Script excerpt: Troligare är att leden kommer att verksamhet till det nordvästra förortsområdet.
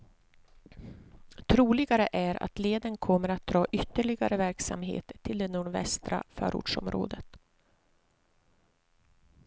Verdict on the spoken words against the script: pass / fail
fail